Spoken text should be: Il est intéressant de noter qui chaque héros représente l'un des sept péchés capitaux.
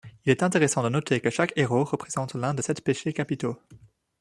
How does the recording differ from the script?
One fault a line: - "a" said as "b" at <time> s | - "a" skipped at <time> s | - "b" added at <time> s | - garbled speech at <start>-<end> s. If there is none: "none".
- "qui" said as "que" at 1.2 s